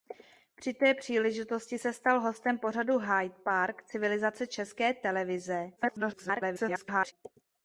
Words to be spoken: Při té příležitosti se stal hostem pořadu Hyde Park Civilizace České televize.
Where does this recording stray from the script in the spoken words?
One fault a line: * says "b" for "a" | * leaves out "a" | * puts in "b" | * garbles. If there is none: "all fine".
* garbles